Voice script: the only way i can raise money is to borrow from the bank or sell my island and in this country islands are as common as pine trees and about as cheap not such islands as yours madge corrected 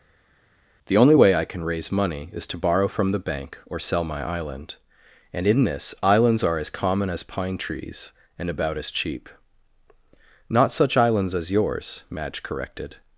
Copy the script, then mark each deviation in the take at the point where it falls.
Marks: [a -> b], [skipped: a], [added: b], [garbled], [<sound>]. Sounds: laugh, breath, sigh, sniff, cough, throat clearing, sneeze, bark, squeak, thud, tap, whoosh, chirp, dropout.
the only way i can raise money is to borrow from the bank or sell my island and in this [skipped: country] islands are as common as pine trees and about as cheap not such islands as yours madge corrected